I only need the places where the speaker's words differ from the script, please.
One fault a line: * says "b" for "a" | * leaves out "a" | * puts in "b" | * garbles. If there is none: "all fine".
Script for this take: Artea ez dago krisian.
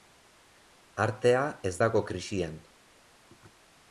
all fine